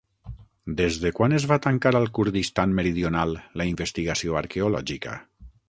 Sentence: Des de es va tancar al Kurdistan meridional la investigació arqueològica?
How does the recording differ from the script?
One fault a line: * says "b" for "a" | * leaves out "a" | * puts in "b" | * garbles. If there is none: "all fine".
* puts in "quan"